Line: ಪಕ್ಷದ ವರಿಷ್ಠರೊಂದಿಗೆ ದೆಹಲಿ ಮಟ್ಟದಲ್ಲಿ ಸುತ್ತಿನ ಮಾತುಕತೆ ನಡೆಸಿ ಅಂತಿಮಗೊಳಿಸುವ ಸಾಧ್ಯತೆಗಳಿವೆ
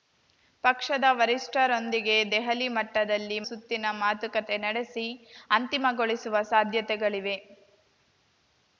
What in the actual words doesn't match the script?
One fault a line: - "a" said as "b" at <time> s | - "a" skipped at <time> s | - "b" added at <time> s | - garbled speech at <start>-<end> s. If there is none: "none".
none